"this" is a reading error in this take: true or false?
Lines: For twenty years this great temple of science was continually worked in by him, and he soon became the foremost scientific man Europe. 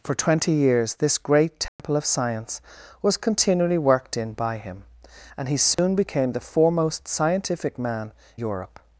false